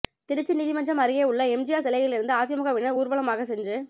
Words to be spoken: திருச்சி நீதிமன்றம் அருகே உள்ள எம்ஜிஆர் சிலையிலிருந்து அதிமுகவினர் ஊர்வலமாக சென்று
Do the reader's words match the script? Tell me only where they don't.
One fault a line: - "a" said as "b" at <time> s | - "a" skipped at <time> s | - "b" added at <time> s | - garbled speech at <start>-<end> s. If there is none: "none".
none